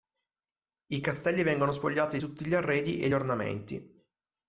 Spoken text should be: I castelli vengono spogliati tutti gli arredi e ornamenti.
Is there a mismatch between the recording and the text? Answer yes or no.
no